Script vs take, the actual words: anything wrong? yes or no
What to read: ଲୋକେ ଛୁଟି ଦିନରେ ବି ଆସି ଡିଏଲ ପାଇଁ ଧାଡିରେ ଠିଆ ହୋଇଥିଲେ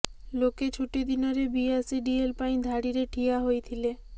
no